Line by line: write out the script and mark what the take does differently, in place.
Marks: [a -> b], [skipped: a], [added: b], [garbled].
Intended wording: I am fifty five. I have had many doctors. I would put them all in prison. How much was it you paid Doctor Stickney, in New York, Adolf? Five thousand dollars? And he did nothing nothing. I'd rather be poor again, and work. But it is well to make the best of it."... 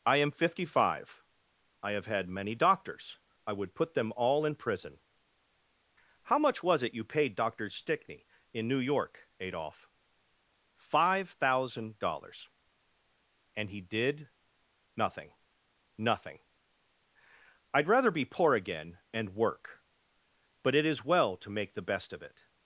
I am fifty five. I have had many doctors. I would put them all in prison. How much was it you paid Doctor Stickney, in New York, Adolf? Five thousand dollars? And he did nothing nothing. I'd rather be poor again, and work. But it is well to make the best of it."...